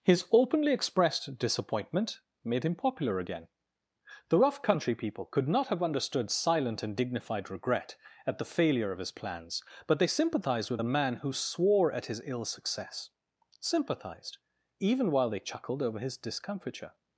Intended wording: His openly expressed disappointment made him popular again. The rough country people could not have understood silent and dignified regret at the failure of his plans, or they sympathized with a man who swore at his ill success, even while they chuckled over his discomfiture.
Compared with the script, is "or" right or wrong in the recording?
wrong